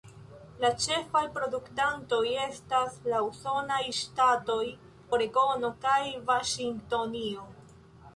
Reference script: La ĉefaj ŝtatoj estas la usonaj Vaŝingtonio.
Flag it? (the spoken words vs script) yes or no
yes